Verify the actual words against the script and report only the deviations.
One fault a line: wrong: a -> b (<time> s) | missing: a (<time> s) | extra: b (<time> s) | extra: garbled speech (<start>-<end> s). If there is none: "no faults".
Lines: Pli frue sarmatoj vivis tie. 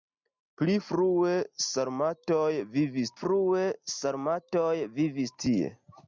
extra: frue sarmatoj vivis (3.2 s)